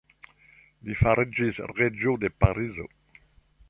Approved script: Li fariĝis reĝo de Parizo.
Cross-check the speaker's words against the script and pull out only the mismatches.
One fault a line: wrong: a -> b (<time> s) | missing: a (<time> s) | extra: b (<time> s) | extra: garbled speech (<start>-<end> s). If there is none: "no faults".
no faults